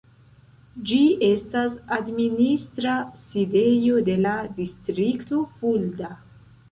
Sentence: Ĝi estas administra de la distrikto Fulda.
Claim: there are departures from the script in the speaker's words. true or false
true